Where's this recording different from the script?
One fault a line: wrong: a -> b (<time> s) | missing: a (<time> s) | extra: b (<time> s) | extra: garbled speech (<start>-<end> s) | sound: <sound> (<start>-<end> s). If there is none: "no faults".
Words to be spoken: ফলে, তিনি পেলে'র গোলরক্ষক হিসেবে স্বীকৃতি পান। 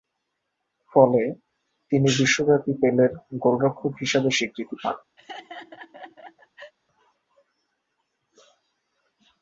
extra: বিশ্বব্যাপী (2.2 s)
sound: laugh (5.2-6.7 s)